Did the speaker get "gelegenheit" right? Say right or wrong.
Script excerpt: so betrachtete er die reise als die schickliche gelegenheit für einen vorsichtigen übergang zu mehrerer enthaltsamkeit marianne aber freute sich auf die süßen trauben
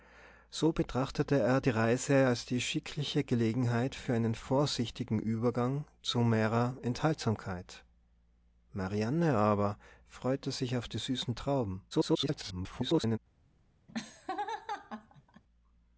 right